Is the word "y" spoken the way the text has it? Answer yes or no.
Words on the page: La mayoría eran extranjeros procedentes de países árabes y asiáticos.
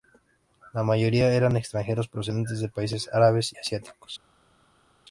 no